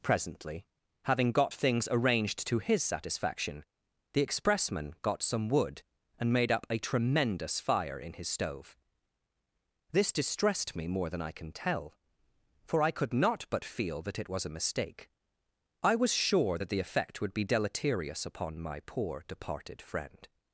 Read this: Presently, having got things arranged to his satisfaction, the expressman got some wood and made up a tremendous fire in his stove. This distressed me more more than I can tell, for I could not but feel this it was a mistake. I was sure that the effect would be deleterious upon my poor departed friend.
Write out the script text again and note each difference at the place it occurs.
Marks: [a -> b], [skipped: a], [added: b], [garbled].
Presently, having got things arranged to his satisfaction, the expressman got some wood and made up a tremendous fire in his stove. This distressed me more [skipped: more] than I can tell, for I could not but feel [this -> that] it was a mistake. I was sure that the effect would be deleterious upon my poor departed friend.